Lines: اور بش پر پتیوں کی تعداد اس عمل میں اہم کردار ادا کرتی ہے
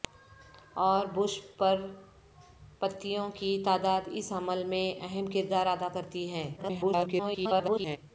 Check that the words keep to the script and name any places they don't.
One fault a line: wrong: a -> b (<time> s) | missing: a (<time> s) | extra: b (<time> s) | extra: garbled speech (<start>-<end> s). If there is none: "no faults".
extra: garbled speech (6.6-8.0 s)